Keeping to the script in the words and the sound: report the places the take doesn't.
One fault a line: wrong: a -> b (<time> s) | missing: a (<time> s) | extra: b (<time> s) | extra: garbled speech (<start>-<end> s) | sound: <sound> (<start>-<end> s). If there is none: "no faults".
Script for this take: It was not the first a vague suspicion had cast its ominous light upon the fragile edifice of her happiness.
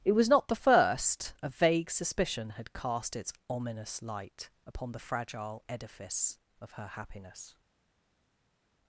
no faults